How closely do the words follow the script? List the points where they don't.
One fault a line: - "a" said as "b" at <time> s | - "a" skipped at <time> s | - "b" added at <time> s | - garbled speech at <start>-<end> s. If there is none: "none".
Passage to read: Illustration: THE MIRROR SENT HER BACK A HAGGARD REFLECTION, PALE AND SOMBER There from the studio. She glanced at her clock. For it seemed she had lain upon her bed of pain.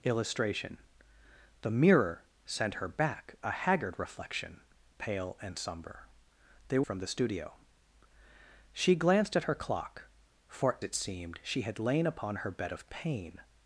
none